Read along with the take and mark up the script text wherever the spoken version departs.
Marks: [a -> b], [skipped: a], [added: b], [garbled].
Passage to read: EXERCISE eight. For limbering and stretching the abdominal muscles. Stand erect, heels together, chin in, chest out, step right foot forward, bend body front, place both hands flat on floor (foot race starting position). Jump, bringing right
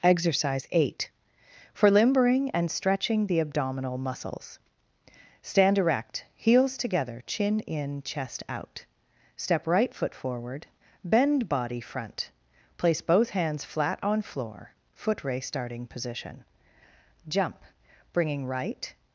EXERCISE eight. For limbering and stretching the abdominal muscles. Stand erect, heels together, chin in, chest out, step right foot forward, bend body front, place both hands flat on floor (foot race starting position). Jump, bringing right